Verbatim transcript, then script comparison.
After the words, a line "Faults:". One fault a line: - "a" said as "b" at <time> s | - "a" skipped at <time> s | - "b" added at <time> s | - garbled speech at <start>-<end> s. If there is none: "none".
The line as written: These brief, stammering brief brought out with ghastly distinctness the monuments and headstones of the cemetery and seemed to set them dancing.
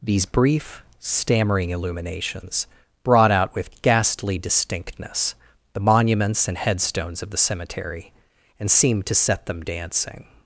These brief, stammering illuminations brought out with ghastly distinctness the monuments and headstones of the cemetery and seemed to set them dancing.
Faults:
- "brief" said as "illuminations" at 1.7 s